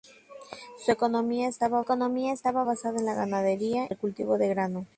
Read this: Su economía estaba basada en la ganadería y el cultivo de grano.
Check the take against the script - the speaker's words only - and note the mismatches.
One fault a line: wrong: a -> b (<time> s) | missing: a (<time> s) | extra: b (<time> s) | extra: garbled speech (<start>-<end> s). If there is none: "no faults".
extra: economía estaba (1.8 s)
missing: y (3.9 s)